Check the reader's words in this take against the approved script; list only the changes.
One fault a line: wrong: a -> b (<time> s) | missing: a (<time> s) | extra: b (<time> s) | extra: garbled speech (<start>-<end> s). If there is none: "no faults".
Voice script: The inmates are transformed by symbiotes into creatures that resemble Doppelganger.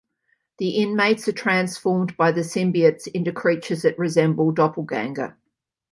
extra: the (2.3 s)